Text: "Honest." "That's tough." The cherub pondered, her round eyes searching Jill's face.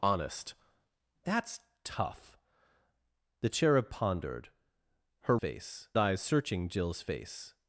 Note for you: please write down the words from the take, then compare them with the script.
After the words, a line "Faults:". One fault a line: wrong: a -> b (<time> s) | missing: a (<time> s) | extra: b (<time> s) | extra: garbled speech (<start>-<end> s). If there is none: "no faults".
"Honest." "That's tough." The cherub pondered, her face eyes searching Jill's face.
Faults:
wrong: round -> face (5.4 s)